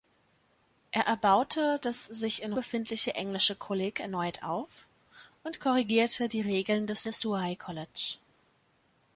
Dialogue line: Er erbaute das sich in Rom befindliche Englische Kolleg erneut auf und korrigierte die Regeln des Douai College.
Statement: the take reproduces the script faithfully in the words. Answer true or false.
false